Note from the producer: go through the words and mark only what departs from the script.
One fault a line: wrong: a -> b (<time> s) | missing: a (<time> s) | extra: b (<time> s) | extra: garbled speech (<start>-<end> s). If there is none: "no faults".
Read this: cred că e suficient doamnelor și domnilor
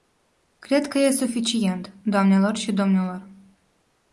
no faults